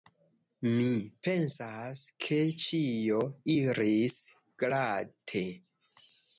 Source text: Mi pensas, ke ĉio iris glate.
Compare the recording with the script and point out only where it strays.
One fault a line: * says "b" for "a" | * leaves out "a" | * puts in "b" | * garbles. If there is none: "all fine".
all fine